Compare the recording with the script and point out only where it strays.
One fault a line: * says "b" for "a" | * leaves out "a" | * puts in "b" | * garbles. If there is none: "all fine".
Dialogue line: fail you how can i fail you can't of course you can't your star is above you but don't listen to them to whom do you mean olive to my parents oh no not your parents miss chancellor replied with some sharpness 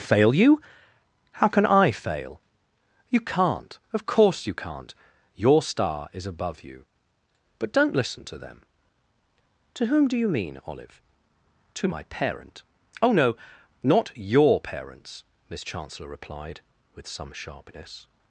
* says "parent" for "parents"